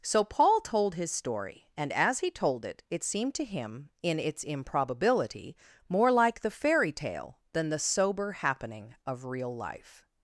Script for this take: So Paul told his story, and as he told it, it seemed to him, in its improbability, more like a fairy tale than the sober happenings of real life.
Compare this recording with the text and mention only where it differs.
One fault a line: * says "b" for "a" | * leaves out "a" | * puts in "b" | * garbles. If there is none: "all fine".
* says "the" for "a"
* says "happening" for "happenings"